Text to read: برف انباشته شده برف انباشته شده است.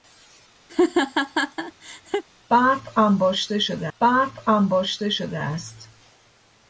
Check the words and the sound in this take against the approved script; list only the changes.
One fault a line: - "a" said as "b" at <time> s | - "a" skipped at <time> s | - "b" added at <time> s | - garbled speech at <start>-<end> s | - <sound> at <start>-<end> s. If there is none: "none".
- laugh at 0.7-2.2 s